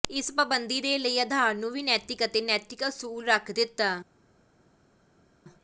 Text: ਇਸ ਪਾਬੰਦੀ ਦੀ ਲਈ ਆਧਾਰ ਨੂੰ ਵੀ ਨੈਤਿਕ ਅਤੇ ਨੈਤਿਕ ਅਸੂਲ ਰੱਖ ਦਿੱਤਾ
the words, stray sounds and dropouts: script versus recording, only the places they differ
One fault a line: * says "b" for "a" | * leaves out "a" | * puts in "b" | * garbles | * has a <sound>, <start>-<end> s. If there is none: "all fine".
* says "ਦੇ" for "ਦੀ"